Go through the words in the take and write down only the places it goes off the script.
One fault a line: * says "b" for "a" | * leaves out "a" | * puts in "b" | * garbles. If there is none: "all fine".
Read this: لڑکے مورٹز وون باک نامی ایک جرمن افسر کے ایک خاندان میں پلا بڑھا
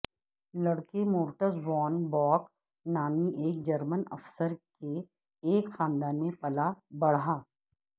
all fine